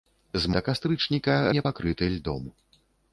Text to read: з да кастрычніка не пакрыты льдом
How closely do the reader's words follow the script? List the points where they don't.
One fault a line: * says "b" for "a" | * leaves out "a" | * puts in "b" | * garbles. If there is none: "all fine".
all fine